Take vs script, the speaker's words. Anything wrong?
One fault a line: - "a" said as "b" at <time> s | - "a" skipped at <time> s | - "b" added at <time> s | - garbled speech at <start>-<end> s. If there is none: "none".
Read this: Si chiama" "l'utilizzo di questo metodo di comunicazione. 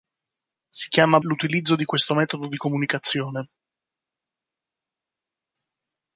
none